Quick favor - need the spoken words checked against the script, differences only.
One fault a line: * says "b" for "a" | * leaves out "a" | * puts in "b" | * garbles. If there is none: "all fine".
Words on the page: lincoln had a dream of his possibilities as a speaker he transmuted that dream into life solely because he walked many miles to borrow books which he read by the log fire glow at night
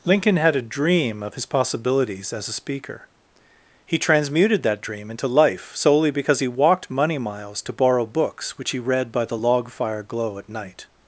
* says "money" for "many"